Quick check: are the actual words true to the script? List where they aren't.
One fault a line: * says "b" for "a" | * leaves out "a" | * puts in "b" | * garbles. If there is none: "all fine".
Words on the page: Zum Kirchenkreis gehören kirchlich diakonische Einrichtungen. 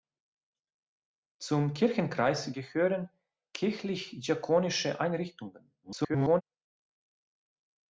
* garbles